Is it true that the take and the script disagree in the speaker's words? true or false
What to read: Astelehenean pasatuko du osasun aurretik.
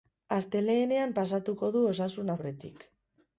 false